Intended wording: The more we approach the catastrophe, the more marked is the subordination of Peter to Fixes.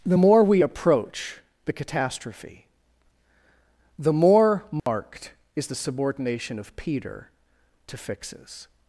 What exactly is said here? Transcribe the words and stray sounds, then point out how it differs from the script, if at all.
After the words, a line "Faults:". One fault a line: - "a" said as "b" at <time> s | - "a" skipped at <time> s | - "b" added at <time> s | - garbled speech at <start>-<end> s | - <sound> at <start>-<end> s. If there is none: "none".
The more we approach the catastrophe, the more marked is the subordination of Peter to Fixes.
Faults:
- dropout at 4.8-4.9 s